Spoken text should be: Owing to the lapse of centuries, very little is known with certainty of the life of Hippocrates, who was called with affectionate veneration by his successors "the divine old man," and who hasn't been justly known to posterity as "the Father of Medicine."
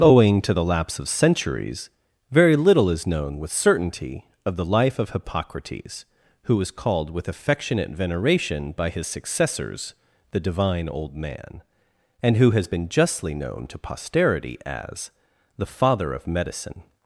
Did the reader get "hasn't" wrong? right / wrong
wrong